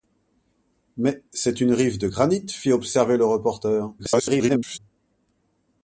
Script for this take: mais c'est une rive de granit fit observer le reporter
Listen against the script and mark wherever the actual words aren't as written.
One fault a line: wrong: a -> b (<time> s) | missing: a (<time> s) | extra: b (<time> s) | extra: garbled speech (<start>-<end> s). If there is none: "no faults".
extra: garbled speech (4.0-4.8 s)